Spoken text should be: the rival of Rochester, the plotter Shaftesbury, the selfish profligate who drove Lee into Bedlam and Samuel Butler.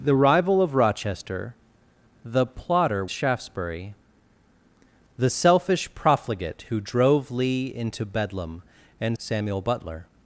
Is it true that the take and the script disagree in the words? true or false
false